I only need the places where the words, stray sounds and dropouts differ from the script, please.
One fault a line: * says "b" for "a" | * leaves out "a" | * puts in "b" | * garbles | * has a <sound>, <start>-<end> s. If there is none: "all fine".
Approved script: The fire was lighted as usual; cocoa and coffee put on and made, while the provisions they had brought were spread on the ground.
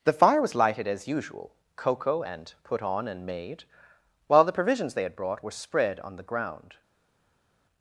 * leaves out "coffee"